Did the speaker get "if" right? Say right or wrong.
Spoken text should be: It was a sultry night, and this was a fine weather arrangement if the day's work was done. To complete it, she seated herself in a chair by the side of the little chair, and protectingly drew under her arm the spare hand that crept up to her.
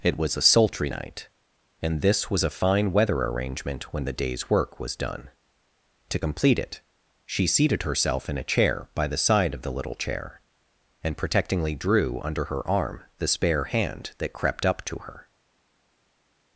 wrong